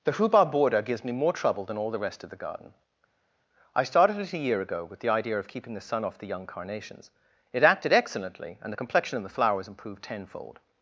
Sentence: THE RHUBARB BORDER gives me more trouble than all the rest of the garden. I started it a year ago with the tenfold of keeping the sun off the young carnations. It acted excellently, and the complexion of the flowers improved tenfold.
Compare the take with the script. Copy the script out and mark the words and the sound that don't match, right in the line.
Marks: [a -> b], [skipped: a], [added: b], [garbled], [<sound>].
THE RHUBARB BORDER gives me more trouble than all the rest of the garden. I started it a year ago with the [tenfold -> idea] of keeping the sun off the young carnations. It acted excellently, and the complexion of the flowers improved tenfold.